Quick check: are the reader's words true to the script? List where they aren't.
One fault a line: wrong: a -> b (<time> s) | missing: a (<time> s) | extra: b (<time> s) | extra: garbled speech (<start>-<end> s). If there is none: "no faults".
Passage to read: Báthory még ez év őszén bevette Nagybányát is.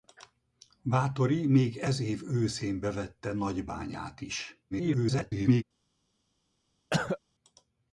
extra: garbled speech (4.7-5.6 s)